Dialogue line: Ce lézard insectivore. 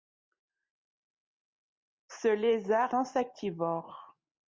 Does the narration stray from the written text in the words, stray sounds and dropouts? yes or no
no